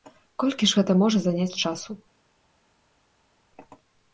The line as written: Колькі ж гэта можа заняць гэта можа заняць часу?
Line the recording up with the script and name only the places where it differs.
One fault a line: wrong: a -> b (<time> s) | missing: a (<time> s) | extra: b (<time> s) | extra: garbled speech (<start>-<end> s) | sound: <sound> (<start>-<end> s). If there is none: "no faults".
missing: гэта можа заняць (1.6 s)